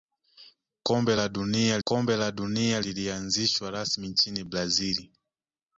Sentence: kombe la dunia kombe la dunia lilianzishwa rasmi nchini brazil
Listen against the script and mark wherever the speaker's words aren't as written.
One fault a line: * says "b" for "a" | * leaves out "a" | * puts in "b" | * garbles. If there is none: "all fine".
all fine